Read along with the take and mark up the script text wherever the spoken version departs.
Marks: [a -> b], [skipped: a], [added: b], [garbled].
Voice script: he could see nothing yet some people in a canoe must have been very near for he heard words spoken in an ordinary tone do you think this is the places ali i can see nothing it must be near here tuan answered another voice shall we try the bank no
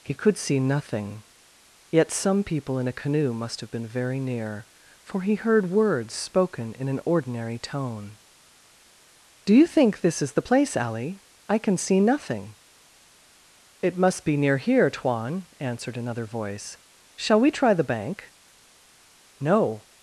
he could see nothing yet some people in a canoe must have been very near for he heard words spoken in an ordinary tone do you think this is the [places -> place] ali i can see nothing it must be near here tuan answered another voice shall we try the bank no